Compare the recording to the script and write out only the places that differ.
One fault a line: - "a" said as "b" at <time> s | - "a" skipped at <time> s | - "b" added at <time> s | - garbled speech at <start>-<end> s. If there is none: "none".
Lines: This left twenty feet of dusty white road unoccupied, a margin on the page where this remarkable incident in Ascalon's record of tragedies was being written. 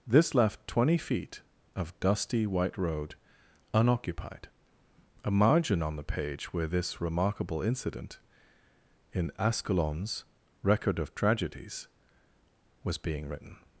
none